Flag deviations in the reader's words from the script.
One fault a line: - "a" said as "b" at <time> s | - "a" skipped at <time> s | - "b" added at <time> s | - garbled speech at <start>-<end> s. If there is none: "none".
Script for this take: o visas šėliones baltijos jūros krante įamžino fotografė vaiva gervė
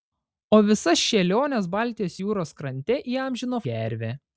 - "fotografė vaiva" skipped at 3.6 s